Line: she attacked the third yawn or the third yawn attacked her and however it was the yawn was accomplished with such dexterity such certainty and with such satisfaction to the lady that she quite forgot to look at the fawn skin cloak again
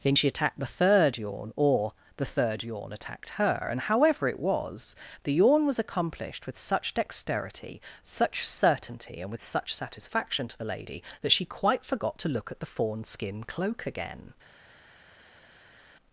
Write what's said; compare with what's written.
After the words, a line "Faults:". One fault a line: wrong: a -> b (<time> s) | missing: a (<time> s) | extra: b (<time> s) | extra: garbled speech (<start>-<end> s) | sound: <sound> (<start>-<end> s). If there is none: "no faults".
then she attacked the third yawn or the third yawn attacked her and however it was the yawn was accomplished with such dexterity such certainty and with such satisfaction to the lady that she quite forgot to look at the fawn skin cloak again
Faults:
extra: then (0.0 s)